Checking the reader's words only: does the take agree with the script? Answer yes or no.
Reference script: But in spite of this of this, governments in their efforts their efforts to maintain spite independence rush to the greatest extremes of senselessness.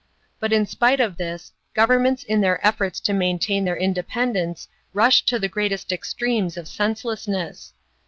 no